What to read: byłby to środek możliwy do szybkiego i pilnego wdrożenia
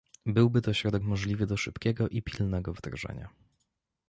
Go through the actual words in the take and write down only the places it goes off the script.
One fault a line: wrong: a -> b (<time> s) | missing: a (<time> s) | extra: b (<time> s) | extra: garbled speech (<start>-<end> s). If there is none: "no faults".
no faults